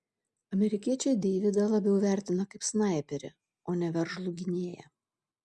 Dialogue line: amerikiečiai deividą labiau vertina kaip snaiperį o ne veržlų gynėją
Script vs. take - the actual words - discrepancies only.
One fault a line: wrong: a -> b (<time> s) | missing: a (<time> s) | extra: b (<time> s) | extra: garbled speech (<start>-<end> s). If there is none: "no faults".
no faults